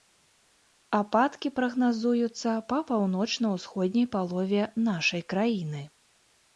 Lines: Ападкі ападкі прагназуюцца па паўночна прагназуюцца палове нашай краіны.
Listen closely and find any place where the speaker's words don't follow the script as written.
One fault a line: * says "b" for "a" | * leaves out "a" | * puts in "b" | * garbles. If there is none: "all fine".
* leaves out "ападкі"
* says "ўсходняй" for "прагназуюцца"